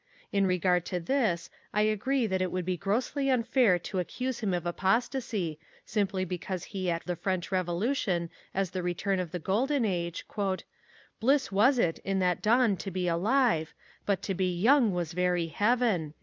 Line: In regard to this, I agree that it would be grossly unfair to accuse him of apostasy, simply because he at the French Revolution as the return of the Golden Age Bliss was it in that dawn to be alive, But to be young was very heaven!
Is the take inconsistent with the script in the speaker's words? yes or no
no